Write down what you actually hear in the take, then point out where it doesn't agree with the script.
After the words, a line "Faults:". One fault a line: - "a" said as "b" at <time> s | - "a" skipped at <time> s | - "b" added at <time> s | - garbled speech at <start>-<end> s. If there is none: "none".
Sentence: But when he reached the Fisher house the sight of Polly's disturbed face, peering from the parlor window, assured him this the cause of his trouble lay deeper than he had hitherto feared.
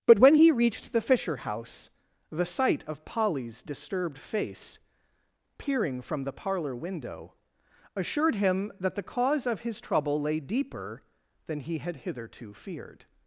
But when he reached the Fisher house the sight of Polly's disturbed face, peering from the parlor window, assured him that the cause of his trouble lay deeper than he had hitherto feared.
Faults:
- "this" said as "that" at 8.8 s